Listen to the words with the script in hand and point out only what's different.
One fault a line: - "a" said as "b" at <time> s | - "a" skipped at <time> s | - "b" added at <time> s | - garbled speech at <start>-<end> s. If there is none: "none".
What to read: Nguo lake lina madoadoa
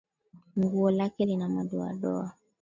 none